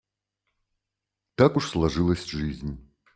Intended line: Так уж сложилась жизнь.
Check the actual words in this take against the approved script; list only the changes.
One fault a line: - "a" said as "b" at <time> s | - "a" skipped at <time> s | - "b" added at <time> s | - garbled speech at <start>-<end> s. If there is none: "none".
none